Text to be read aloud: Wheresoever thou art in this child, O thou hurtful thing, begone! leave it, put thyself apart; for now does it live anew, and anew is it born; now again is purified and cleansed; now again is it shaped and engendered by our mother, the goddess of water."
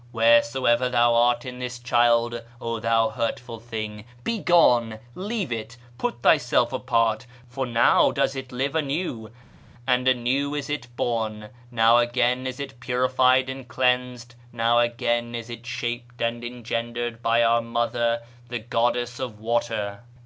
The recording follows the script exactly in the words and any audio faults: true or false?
false